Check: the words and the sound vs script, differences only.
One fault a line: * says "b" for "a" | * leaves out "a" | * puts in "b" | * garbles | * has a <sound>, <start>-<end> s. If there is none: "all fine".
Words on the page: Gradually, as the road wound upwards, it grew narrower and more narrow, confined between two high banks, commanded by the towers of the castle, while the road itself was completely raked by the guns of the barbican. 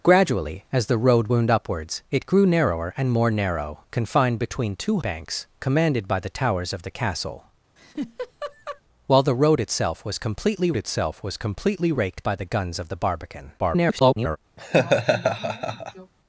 * leaves out "high"
* has a laugh, 7.8-8.8 s
* puts in "itself was completely"
* garbles
* has a laugh, 14.6-16.1 s